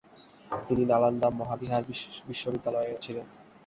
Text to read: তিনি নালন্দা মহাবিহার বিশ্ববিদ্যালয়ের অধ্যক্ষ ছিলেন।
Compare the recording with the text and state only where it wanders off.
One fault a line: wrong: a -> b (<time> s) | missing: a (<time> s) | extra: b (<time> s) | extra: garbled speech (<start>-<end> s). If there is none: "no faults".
missing: অধ্যক্ষ (3.0 s)